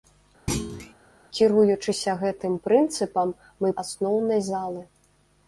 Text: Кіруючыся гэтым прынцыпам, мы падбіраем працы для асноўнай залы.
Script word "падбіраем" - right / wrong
wrong